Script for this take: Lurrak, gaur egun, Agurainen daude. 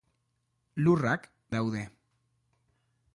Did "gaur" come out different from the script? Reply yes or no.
yes